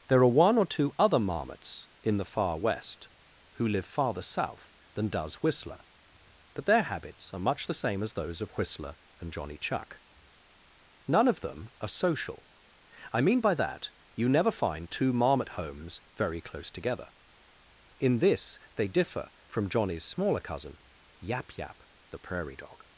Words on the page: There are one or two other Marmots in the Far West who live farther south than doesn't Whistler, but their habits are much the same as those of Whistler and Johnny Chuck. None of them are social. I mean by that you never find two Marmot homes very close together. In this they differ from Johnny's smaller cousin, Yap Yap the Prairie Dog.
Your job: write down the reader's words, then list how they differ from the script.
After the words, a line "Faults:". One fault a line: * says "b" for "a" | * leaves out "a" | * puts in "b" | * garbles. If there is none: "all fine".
There are one or two other Marmots in the Far West who live farther south than does Whistler, but their habits are much the same as those of Whistler and Johnny Chuck. None of them are social. I mean by that you never find two Marmot homes very close together. In this they differ from Johnny's smaller cousin, Yap Yap the Prairie Dog.
Faults:
* says "does" for "doesn't"